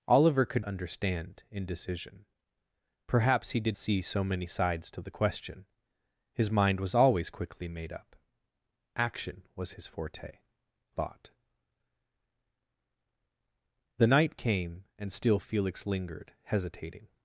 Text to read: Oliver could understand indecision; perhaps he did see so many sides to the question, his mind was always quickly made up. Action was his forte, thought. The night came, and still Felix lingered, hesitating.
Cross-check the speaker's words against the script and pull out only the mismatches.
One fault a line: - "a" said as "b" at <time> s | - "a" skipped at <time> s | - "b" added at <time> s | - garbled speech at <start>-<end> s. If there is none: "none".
none